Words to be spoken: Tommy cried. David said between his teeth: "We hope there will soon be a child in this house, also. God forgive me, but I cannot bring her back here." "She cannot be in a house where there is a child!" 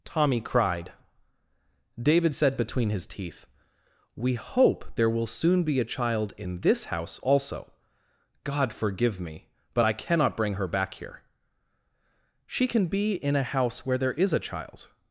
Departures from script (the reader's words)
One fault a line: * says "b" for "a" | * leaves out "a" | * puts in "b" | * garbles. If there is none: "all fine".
* says "can" for "cannot"